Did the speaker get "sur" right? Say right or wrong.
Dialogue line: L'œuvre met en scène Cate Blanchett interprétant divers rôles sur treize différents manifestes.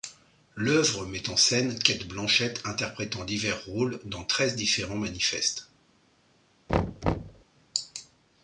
wrong